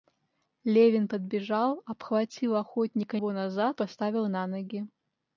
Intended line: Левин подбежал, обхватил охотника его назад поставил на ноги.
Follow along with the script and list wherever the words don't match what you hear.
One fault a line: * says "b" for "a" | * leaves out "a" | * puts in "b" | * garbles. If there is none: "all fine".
all fine